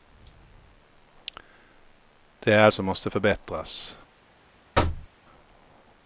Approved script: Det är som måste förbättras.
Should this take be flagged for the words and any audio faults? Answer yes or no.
yes